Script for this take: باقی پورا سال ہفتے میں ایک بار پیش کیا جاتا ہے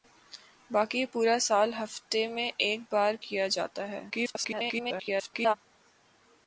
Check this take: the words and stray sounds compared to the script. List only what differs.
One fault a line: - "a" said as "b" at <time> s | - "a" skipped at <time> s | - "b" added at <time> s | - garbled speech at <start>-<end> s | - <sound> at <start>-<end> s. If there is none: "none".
- "پیش" skipped at 3.1 s
- garbled speech at 4.1-5.5 s